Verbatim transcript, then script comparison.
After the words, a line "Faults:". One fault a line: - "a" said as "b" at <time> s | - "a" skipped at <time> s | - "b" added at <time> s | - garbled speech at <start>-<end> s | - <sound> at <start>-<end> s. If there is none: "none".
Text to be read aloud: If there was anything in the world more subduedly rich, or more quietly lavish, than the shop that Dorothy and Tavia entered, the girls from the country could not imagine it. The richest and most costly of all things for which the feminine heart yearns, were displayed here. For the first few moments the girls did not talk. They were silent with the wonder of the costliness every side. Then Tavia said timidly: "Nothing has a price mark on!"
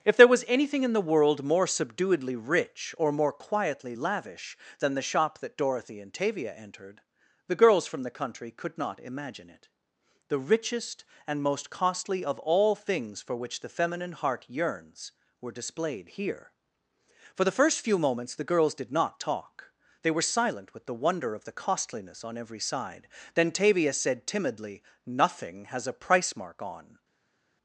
If there was anything in the world more subduedly rich, or more quietly lavish, than the shop that Dorothy and Tavia entered, the girls from the country could not imagine it. The richest and most costly of all things for which the feminine heart yearns, were displayed here. For the first few moments the girls did not talk. They were silent with the wonder of the costliness on every side. Then Tavia said timidly: "Nothing has a price mark on!"
Faults:
- "on" added at 22.2 s